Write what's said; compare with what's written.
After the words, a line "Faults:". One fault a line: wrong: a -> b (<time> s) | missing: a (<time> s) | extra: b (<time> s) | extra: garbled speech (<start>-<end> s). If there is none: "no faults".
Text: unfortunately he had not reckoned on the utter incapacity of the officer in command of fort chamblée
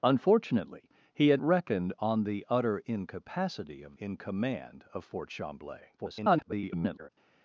unfortunately he had reckoned on the utter incapacity of in command of fort chamblée [garbled]
Faults:
missing: not (1.4 s)
missing: the officer (4.0 s)
extra: garbled speech (6.0-7.1 s)